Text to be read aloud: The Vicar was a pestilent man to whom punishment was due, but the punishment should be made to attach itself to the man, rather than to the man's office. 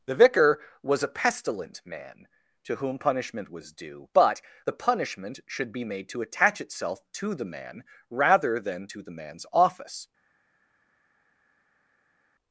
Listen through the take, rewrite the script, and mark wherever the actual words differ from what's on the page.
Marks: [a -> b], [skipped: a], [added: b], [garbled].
The Vicar was a pestilent man to whom punishment was due, but the punishment should be made to attach itself to the man, rather than to the man's office.